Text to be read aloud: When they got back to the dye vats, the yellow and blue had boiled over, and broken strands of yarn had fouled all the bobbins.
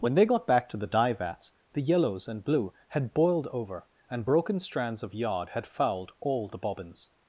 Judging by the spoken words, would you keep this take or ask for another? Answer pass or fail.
fail